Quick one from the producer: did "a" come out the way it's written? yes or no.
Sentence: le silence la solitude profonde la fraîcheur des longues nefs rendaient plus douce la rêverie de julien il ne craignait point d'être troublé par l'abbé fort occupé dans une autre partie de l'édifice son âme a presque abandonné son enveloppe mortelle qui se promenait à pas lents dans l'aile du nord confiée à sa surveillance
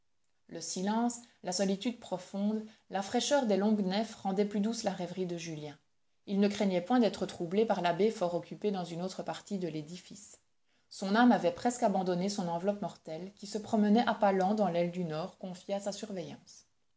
no